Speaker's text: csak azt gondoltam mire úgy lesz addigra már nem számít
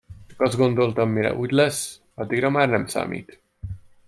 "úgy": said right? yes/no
yes